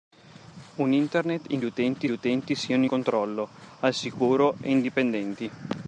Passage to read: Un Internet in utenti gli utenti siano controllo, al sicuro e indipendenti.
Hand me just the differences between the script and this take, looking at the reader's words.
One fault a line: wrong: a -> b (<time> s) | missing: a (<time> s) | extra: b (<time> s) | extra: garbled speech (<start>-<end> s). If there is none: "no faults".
no faults